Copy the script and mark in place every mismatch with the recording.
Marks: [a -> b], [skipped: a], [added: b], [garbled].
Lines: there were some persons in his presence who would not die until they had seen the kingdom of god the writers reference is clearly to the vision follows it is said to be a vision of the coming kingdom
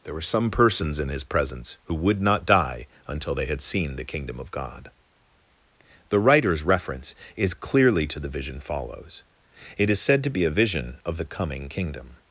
there were some persons in his presence who would not die until they had seen the kingdom of god the writers reference is clearly to the vision follows it is said to be a vision of the coming kingdom